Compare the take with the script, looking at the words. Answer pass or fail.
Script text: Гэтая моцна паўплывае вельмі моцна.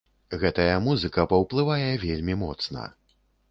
fail